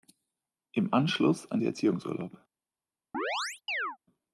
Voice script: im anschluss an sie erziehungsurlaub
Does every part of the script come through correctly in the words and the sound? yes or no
no